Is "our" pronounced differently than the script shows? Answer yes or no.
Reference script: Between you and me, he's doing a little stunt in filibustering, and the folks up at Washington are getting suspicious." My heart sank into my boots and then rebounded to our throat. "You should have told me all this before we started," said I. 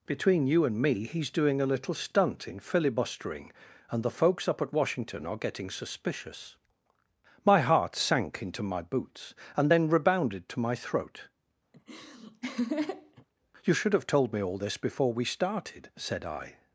yes